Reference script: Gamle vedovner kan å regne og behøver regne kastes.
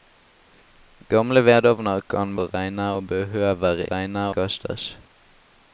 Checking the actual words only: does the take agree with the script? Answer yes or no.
yes